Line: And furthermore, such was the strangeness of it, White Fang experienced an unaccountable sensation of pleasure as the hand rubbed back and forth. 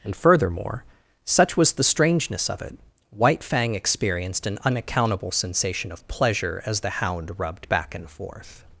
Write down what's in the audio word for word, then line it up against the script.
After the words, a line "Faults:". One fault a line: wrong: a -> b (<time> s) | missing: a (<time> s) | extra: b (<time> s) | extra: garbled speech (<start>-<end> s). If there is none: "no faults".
And furthermore, such was the strangeness of it, White Fang experienced an unaccountable sensation of pleasure as the hound rubbed back and forth.
Faults:
wrong: hand -> hound (6.9 s)